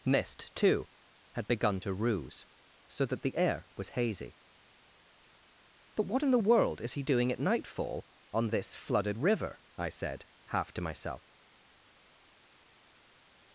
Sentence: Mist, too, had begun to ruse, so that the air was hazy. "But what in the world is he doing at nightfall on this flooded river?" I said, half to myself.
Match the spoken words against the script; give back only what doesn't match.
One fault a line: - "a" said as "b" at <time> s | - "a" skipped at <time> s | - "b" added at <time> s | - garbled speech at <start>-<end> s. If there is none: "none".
none